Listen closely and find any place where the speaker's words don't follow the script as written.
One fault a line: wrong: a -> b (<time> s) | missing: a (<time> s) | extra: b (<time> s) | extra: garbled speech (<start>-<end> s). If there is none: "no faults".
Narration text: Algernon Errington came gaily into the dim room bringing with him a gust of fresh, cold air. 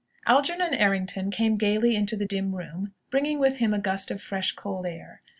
no faults